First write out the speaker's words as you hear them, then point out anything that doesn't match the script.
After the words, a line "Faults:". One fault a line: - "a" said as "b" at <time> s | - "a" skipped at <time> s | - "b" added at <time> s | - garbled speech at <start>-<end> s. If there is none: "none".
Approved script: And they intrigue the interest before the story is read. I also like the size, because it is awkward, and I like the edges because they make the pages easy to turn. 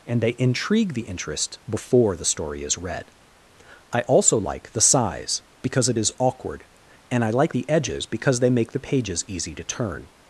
And they intrigue the interest before the story is read. I also like the size, because it is awkward, and I like the edges because they make the pages easy to turn.
Faults:
none